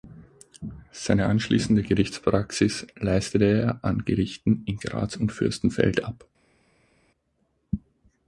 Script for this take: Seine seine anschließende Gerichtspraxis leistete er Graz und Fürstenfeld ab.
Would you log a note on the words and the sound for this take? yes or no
yes